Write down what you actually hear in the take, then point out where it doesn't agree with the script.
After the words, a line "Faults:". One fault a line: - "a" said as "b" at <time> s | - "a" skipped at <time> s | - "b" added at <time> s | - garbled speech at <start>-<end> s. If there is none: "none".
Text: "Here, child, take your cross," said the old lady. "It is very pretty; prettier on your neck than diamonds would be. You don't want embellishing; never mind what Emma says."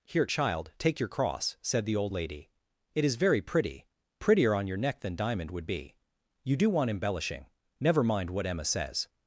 "Here, child, take your cross," said the old lady. "It is very pretty; prettier on your neck than diamond would be. You do want embellishing; never mind what Emma says."
Faults:
- "diamonds" said as "diamond" at 5.2 s
- "don't" said as "do" at 6.6 s